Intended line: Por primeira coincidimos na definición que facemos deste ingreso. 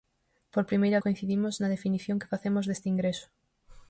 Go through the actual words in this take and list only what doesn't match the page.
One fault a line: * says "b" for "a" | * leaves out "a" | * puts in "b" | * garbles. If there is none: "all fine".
all fine